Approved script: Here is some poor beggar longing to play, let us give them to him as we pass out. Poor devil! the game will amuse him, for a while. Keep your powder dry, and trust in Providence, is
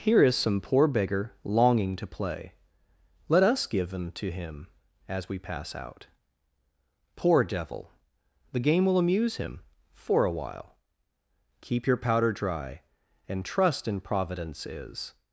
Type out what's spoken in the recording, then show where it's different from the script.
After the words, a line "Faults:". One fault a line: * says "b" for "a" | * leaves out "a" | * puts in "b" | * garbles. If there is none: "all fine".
Here is some poor beggar longing to play, let us give them to him as we pass out. Poor devil! the game will amuse him, for a while. Keep your powder dry, and trust in Providence, is
Faults:
all fine